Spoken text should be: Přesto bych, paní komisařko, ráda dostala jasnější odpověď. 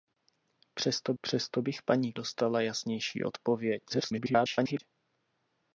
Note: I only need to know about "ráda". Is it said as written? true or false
false